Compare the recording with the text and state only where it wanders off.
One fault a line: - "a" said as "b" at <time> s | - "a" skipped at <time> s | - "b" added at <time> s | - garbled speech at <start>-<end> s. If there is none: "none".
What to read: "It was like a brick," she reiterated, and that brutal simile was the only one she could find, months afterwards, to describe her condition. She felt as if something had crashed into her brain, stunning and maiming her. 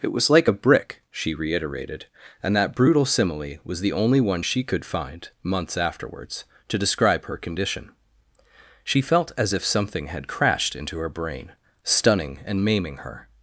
none